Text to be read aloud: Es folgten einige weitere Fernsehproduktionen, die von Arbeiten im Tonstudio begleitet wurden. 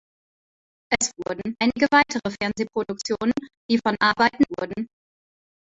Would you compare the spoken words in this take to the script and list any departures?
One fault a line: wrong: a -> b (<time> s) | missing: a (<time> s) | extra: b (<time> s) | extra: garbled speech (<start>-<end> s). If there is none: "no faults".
wrong: folgten -> wurden (1.2 s)
missing: im Tonstudio begleitet (4.4 s)